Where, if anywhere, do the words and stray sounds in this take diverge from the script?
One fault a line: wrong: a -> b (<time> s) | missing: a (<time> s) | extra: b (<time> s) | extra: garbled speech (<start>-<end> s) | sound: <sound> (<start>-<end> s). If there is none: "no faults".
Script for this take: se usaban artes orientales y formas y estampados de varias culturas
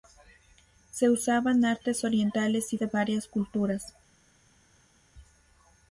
missing: formas y estampados (2.8 s)